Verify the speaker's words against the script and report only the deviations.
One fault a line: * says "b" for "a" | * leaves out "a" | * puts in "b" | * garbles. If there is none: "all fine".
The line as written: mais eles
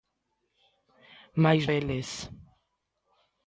all fine